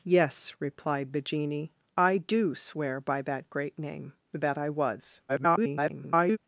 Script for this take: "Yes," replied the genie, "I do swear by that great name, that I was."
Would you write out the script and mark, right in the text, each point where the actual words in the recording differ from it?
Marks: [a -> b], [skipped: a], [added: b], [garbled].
"Yes," replied the genie, "I do swear by that great name, that I was." [garbled]